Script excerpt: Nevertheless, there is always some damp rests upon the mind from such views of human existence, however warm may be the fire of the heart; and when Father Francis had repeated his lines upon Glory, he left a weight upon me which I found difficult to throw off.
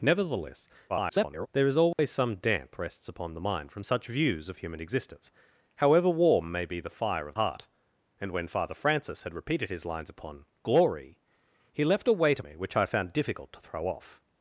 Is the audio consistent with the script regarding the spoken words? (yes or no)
no